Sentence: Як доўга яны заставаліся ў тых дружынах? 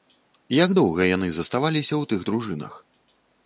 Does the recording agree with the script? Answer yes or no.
yes